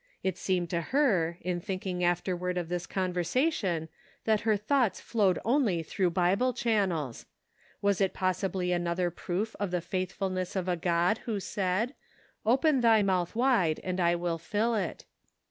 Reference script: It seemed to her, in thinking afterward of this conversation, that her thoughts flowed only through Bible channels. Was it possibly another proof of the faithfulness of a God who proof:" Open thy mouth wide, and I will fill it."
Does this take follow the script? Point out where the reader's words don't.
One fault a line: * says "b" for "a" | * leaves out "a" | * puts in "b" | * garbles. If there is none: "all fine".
* says "said" for "proof"